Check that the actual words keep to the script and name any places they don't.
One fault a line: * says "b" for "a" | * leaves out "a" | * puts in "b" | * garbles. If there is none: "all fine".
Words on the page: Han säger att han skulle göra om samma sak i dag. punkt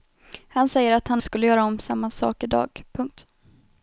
all fine